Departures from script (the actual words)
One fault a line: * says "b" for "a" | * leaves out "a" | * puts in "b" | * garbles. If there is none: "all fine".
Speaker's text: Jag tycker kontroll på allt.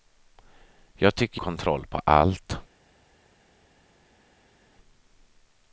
all fine